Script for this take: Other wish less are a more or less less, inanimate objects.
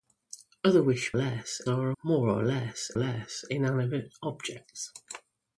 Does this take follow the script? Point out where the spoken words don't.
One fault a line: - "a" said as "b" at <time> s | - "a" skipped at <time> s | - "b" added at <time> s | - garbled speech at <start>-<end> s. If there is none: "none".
none